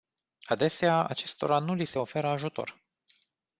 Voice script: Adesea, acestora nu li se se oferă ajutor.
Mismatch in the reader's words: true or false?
true